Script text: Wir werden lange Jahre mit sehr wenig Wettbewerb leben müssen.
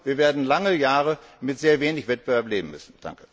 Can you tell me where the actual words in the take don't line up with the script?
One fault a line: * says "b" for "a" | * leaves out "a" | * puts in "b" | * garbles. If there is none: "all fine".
all fine